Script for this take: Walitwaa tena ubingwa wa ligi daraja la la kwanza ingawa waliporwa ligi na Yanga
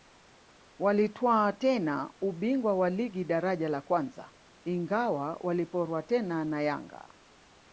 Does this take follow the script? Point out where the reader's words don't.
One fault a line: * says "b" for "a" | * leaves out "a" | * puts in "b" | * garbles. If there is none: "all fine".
* leaves out "la"
* says "tena" for "ligi"